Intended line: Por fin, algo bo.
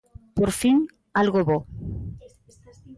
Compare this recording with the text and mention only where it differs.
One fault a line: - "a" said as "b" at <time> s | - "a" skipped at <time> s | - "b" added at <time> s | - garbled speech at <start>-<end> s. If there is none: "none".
none